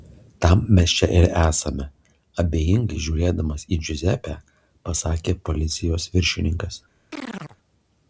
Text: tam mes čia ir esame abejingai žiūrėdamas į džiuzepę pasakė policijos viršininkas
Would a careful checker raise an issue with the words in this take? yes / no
no